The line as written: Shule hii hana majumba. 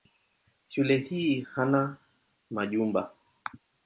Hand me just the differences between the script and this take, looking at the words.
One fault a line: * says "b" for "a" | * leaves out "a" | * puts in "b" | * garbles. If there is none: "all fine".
all fine